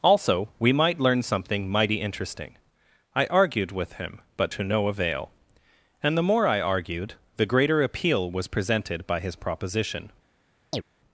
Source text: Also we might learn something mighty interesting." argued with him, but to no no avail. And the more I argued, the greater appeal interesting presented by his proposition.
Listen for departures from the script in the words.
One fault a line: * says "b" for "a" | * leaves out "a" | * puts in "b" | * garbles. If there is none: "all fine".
* puts in "I"
* leaves out "no"
* says "was" for "interesting"